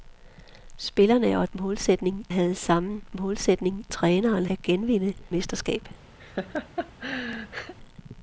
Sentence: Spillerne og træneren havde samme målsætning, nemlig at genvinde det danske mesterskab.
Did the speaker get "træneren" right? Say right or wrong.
wrong